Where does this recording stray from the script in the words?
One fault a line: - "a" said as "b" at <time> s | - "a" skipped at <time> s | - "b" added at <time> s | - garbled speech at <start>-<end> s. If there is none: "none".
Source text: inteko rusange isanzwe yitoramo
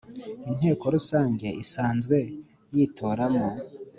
none